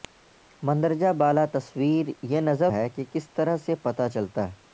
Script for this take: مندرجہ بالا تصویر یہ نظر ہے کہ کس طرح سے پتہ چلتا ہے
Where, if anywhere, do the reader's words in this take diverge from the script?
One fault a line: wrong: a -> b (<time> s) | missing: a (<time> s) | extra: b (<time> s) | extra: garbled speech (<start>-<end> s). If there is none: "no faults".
no faults